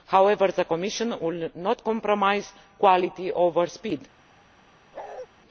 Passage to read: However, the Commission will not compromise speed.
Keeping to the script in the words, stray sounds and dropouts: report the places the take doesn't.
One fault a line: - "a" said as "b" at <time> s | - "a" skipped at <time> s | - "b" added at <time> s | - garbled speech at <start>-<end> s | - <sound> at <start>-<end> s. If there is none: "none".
- "quality over" added at 2.8 s
- bark at 4.9-5.3 s